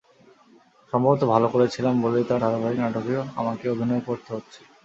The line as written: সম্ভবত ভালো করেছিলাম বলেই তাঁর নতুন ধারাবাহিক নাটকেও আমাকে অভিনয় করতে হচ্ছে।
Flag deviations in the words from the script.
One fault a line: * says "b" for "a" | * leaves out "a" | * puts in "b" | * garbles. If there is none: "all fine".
* leaves out "নতুন"